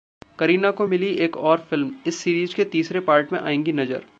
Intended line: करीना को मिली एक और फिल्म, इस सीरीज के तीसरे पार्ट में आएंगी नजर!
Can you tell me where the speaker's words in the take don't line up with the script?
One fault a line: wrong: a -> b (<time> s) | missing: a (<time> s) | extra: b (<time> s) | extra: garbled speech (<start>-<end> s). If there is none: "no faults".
no faults